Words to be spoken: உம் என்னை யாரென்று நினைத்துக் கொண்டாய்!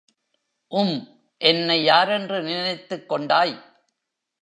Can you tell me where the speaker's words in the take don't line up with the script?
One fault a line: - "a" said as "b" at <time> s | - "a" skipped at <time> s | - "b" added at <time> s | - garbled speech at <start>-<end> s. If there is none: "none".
none